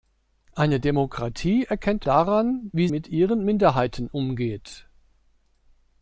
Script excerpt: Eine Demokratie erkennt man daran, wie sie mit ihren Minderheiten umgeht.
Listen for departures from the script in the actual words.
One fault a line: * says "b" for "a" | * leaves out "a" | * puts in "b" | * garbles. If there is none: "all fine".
* leaves out "man"
* leaves out "sie"